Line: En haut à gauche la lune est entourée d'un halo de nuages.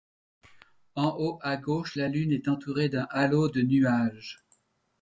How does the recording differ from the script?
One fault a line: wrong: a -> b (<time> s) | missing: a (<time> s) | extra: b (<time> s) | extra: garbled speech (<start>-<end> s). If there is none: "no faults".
no faults